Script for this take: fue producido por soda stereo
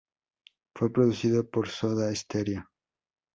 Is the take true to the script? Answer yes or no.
yes